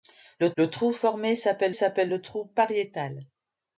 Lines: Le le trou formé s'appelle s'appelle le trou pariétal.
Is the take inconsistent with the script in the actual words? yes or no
no